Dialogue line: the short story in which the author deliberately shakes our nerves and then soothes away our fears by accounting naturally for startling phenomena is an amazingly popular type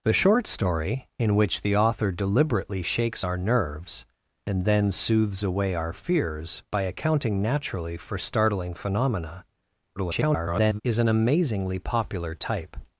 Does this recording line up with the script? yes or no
no